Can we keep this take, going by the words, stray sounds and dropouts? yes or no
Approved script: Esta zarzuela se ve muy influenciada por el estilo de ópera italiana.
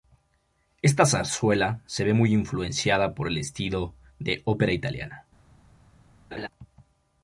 no